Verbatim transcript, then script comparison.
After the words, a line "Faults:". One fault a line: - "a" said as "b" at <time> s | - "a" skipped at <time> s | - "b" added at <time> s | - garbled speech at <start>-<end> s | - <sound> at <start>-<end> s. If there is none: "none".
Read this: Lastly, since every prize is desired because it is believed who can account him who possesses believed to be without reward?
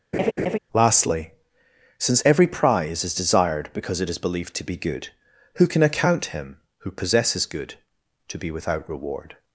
Lastly, since every prize is desired because it is believed to be good, who can account him who possesses good to be without reward?
Faults:
- laugh at 0.1-0.6 s
- "to be good" added at 4.5 s
- "believed" said as "good" at 7.4 s